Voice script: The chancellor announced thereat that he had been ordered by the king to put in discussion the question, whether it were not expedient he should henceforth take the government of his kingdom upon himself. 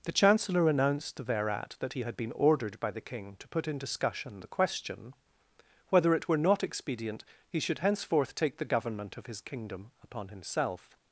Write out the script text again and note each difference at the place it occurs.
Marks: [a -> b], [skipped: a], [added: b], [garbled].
The chancellor announced thereat that he had been ordered by the king to put in discussion the question, whether it were not expedient he should henceforth take the government of his kingdom upon himself.